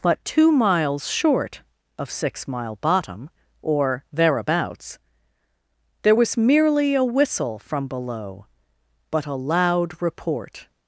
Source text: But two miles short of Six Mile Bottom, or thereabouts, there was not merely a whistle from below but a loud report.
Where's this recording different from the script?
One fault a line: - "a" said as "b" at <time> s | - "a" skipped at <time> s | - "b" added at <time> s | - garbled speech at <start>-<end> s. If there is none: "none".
- "not" skipped at 6.4 s